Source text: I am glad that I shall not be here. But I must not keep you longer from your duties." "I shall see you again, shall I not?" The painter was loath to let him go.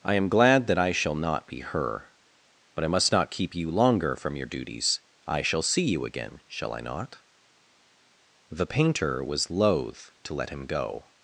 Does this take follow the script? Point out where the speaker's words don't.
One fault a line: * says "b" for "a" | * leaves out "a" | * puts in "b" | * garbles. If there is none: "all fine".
* says "her" for "here"